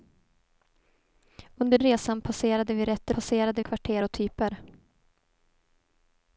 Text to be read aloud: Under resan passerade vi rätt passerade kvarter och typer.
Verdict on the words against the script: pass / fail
pass